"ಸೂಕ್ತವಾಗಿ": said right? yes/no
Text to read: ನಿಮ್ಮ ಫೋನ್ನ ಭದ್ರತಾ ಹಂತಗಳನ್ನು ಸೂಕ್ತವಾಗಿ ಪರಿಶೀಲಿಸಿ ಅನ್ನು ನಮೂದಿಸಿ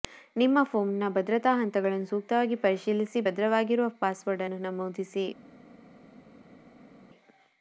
yes